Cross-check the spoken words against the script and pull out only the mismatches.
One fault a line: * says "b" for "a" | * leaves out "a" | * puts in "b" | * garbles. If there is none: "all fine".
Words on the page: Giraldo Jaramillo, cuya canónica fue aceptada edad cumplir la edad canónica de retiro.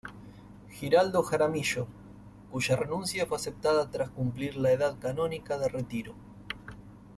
* says "renuncia" for "canónica"
* says "tras" for "edad"